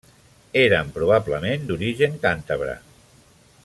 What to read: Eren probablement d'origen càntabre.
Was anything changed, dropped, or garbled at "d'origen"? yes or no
no